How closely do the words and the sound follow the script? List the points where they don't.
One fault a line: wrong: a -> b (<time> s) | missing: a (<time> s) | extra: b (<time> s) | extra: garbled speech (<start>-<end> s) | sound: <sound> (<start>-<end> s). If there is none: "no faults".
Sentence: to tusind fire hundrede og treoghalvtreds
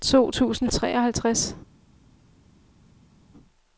missing: fire hundrede og (0.7 s)